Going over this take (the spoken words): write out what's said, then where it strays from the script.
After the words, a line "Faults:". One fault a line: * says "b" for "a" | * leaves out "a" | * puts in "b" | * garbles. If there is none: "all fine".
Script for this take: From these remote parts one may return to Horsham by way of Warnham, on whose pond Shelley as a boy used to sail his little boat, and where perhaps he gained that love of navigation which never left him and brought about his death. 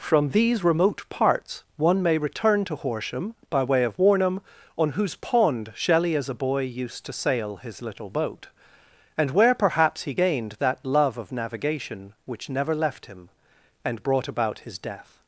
From these remote parts one may return to Horsham by way of Warnham, on whose pond Shelley as a boy used to sail his little boat, and where perhaps he gained that love of navigation which never left him and brought about his death.
Faults:
all fine